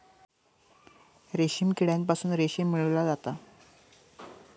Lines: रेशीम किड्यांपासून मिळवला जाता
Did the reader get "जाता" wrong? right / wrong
right